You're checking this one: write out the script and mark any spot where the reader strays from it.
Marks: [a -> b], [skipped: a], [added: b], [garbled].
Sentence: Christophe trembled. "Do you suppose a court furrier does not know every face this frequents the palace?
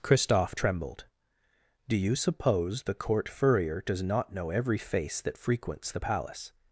Christophe trembled. "Do you suppose [a -> the] court furrier does not know every face [this -> that] frequents the palace?